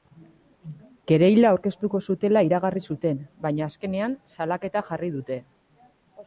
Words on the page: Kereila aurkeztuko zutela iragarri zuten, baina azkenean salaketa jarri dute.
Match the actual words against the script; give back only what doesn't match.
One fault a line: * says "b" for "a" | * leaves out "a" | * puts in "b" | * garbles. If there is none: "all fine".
all fine